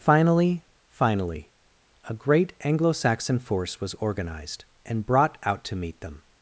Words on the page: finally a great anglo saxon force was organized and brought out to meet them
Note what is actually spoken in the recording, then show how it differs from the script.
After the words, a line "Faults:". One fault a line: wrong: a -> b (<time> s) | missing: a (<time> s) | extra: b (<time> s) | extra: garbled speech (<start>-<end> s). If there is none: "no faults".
finally finally a great anglo saxon force was organized and brought out to meet them
Faults:
extra: finally (0.9 s)